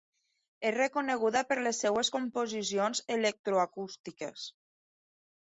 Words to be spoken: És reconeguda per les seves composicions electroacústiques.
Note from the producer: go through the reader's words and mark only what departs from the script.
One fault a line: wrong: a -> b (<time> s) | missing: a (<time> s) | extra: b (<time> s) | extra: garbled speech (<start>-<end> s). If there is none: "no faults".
no faults